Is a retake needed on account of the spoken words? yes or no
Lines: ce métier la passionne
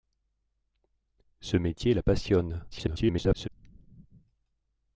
yes